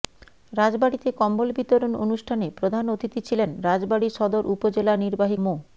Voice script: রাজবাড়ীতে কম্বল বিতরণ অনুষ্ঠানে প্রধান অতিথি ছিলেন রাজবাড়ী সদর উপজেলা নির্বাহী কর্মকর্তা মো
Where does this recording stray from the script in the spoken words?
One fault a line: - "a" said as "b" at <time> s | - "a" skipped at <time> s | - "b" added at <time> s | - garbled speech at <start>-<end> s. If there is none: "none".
- "কর্মকর্তা" skipped at 5.4 s